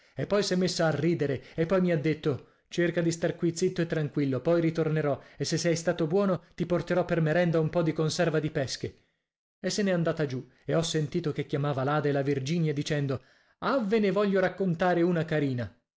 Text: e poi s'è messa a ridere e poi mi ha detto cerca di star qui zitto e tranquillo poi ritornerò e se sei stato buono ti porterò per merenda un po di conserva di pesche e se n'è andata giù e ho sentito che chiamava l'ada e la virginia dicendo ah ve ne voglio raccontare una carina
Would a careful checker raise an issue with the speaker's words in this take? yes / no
no